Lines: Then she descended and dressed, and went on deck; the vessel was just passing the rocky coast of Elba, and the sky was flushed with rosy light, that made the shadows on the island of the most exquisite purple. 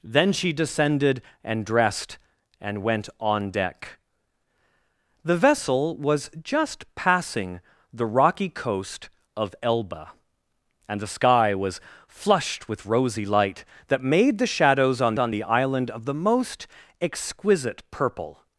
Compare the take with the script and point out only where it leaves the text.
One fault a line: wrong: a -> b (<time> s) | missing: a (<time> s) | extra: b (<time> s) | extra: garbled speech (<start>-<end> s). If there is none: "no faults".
extra: on (15.2 s)